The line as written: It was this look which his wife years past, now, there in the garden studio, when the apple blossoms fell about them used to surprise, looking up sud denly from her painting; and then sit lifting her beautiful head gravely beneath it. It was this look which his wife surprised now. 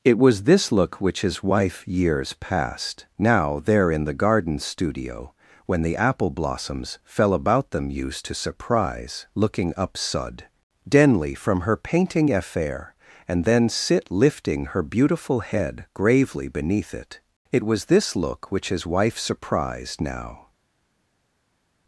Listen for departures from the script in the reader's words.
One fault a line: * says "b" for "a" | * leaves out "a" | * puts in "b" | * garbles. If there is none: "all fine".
* puts in "affair"